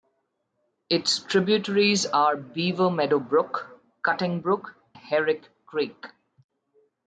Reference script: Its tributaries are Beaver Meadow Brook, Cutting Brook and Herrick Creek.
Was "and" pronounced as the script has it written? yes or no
no